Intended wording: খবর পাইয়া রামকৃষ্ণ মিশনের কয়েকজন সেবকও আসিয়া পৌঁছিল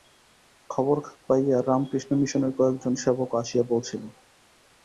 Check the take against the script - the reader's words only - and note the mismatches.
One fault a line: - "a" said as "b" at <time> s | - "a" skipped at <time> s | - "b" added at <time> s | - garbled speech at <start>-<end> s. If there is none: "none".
none